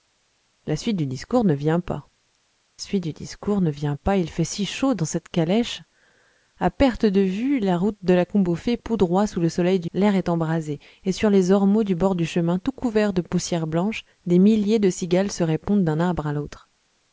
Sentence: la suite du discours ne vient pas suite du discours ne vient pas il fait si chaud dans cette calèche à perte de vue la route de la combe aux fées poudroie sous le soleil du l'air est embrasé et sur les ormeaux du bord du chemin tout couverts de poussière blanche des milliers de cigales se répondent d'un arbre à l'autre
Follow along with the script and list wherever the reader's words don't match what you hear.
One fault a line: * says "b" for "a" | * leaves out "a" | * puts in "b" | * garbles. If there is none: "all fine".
all fine